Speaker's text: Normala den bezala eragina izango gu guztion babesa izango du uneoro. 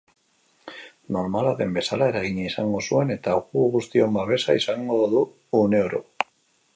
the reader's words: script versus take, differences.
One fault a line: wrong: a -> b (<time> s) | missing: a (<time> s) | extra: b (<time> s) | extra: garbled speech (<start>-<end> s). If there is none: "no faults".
extra: zuen eta (2.9 s)